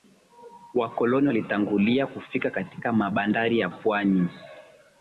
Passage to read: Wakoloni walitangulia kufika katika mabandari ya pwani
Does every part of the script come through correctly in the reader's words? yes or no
yes